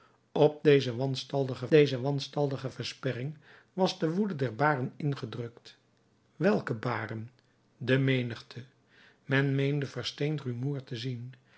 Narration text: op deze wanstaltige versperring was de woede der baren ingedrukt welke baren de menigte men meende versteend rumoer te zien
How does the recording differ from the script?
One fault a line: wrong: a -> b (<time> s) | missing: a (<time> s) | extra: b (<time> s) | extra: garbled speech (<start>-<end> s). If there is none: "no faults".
extra: deze wanstaltige (1.7 s)